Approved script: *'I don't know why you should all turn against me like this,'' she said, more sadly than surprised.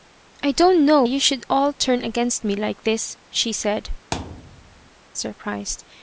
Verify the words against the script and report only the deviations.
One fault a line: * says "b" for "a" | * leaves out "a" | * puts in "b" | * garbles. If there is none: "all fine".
* leaves out "why"
* leaves out "more sadly than"